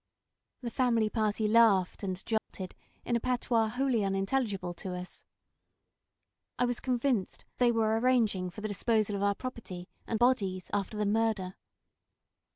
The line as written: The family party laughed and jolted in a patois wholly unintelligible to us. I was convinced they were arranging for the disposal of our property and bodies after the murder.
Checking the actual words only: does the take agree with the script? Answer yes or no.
yes